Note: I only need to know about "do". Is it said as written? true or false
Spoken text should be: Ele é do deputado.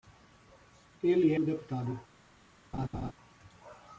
true